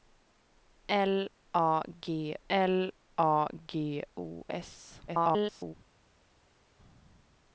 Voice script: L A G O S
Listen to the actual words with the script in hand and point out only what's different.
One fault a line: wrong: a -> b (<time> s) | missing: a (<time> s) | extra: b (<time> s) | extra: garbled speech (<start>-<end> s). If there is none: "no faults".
extra: l A G (2.5 s)
extra: garbled speech (5.1-5.7 s)